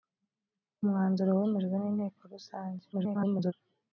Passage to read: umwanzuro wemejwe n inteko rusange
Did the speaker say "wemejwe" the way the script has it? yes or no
yes